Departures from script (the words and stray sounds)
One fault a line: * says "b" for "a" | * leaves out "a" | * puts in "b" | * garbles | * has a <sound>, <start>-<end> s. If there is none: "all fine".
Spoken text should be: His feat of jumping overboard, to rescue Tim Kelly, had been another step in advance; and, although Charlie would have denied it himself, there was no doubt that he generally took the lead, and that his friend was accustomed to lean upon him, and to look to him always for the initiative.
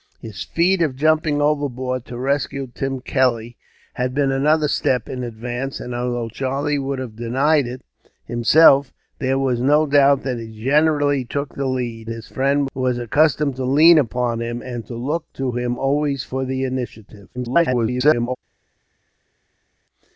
* leaves out "and that"
* garbles